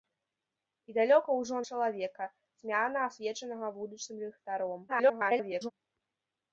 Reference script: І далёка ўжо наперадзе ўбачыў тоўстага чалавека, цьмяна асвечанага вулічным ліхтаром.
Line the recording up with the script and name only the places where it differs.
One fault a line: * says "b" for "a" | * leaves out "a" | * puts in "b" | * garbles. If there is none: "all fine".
* leaves out "наперадзе ўбачыў тоўстага"
* garbles